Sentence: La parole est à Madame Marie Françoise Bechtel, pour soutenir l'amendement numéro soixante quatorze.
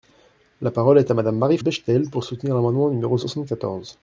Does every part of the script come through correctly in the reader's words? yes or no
no